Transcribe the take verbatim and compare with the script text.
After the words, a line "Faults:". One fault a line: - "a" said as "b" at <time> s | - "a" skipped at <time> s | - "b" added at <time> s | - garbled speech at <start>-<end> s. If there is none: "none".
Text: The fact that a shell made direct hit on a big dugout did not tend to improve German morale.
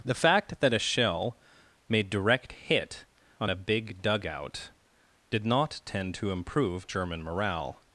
The fact that a shell made direct hit on a big dugout did not tend to improve German morale.
Faults:
none